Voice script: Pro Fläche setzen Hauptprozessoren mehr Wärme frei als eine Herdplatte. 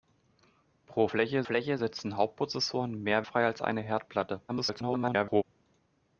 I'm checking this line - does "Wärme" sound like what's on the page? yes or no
no